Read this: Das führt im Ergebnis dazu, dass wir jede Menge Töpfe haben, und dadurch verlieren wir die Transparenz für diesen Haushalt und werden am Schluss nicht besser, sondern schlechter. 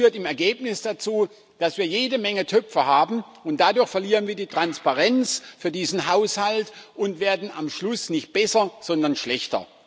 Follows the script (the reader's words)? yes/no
yes